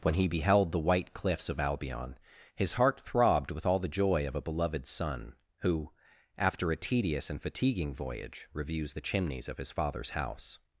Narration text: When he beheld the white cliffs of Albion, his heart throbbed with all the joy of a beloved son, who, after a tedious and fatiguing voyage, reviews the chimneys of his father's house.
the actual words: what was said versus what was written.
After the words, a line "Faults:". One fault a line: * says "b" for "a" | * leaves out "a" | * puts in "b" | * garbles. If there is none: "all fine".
When he beheld the white cliffs of Albion, his heart throbbed with all the joy of a beloved son, who, after a tedious and fatiguing voyage, reviews the chimneys of his father's house.
Faults:
all fine